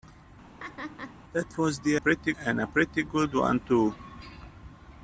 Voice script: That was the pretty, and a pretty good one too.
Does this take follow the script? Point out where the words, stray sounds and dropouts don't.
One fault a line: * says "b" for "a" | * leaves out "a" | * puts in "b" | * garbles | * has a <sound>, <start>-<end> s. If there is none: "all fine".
* has a laugh, 0.6-1.2 s